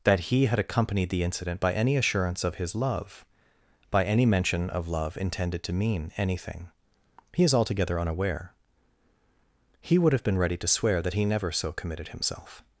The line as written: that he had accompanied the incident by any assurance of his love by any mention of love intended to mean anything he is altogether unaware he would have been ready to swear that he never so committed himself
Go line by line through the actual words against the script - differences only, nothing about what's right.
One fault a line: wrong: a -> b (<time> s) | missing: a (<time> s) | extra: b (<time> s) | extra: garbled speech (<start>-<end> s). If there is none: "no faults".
no faults